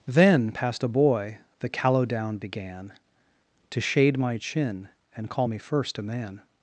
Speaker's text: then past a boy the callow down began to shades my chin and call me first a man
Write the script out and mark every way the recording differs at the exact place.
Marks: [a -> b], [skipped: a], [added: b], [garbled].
then past a boy the callow down began to [shades -> shade] my chin and call me first a man